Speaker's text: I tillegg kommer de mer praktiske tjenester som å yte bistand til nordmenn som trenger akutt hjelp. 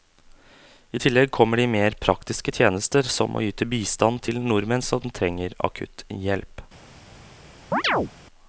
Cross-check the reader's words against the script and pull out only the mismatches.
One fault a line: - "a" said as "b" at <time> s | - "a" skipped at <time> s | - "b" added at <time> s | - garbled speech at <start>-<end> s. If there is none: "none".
none